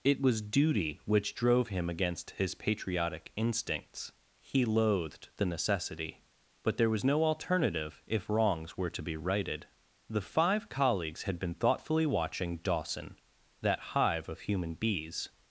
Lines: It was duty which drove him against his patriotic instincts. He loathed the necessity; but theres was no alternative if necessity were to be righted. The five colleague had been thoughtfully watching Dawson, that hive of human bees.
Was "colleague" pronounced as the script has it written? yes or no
no